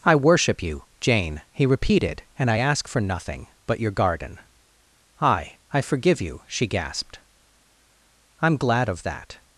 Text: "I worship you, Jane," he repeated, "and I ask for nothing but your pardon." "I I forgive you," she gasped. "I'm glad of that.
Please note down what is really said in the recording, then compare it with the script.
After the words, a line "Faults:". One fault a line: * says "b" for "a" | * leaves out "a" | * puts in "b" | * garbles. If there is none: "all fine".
"I worship you, Jane," he repeated, "and I ask for nothing but your garden." "I I forgive you," she gasped. "I'm glad of that.
Faults:
* says "garden" for "pardon"